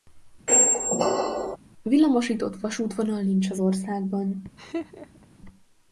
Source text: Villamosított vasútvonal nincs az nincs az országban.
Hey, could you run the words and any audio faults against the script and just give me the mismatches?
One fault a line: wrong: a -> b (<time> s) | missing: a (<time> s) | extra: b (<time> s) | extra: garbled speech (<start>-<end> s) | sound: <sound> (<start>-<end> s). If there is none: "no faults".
sound: squeak (0.5-1.6 s)
missing: nincs az (3.6 s)
sound: laugh (4.6-5.3 s)